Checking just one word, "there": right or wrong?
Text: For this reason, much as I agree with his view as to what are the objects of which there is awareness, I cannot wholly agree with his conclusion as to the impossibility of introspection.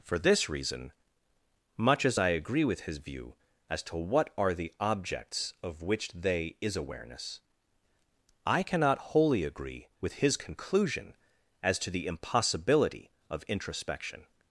wrong